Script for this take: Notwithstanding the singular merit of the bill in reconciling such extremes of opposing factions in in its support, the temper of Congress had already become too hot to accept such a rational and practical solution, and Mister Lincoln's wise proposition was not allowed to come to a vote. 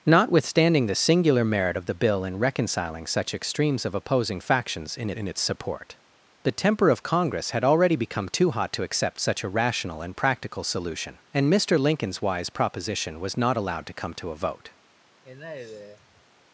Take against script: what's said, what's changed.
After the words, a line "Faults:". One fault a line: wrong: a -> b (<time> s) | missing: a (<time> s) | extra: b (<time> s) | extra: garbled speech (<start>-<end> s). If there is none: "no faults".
Notwithstanding the singular merit of the bill in reconciling such extremes of opposing factions in in its support, the temper of Congress had already become too hot to accept such a rational and practical solution, and Mister Lincoln's wise proposition was not allowed to come to a vote.
Faults:
no faults